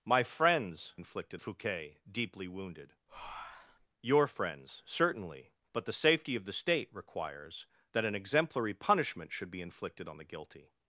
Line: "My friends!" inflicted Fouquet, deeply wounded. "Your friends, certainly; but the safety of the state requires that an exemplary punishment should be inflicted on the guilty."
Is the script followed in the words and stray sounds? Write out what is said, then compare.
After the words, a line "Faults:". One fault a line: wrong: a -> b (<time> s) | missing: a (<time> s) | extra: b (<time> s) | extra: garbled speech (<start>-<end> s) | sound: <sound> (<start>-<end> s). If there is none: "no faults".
"My friends!" inflicted Fouquet, deeply wounded. "Your friends, certainly; but the safety of the state requires that an exemplary punishment should be inflicted on the guilty."
Faults:
sound: breath (3.1-3.9 s)